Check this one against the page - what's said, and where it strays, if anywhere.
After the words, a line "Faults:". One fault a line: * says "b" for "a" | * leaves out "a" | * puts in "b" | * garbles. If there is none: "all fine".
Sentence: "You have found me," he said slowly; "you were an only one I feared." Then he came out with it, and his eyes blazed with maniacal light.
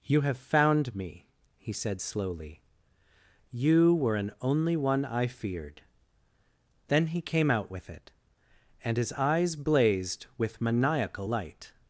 "You have found me," he said slowly; "you were an only one I feared." Then he came out with it, and his eyes blazed with maniacal light.
Faults:
all fine